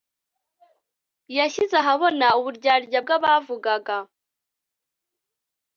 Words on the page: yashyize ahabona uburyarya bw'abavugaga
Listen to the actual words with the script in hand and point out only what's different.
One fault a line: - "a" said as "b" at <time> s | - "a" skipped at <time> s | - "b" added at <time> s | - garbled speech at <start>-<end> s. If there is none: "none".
none